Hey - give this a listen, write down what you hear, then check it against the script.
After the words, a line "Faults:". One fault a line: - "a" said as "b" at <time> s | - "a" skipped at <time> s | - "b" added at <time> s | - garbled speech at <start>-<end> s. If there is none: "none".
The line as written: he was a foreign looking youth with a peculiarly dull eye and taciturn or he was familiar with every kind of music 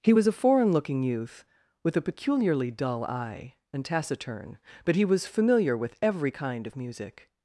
he was a foreign looking youth with a peculiarly dull eye and taciturn but he was familiar with every kind of music
Faults:
- "or" said as "but" at 4.9 s